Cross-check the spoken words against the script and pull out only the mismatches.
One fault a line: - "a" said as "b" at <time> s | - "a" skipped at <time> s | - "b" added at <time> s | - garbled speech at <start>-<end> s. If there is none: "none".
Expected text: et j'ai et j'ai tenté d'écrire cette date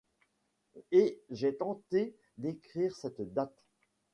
- "et j'ai" skipped at 1.6 s